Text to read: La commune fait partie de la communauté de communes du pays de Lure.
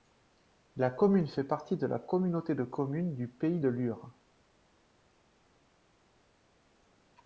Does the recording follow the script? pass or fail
pass